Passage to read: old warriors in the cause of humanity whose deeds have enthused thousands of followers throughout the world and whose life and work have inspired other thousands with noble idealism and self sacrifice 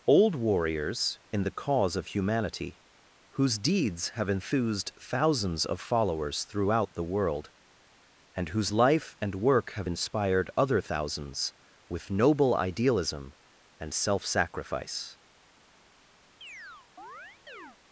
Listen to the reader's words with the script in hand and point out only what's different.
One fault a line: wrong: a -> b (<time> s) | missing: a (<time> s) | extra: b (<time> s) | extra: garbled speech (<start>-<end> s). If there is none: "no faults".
no faults